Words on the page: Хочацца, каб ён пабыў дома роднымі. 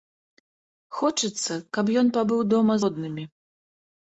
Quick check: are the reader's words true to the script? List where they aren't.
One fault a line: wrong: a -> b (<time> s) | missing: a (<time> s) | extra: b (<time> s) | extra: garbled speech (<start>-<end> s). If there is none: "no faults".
no faults